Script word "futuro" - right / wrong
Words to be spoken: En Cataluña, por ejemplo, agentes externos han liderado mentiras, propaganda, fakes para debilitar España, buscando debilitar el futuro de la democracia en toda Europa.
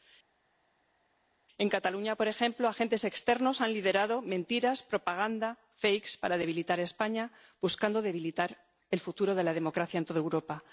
right